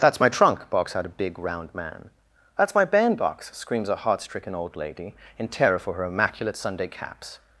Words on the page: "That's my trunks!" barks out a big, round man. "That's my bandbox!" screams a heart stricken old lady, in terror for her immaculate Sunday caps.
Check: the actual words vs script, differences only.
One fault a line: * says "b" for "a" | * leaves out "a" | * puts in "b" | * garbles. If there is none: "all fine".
* says "trunk" for "trunks"